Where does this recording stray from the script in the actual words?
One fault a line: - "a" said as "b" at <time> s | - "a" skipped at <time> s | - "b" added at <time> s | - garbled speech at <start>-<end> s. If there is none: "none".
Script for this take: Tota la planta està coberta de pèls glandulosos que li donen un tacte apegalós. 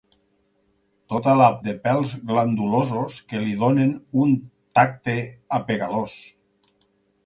- "planta està coberta" skipped at 1.5 s